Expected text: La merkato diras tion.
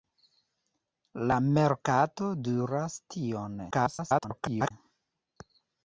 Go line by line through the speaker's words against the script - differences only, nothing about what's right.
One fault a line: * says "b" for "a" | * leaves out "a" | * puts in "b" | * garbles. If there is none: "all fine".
* garbles